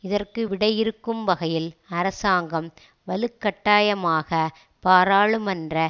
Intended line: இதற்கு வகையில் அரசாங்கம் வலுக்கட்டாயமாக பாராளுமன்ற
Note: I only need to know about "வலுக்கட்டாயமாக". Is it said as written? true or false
true